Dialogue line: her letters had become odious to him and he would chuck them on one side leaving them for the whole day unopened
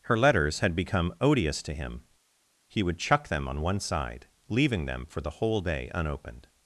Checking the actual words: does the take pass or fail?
fail